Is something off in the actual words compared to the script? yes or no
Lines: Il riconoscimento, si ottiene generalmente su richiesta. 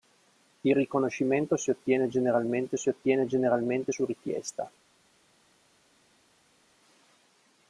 yes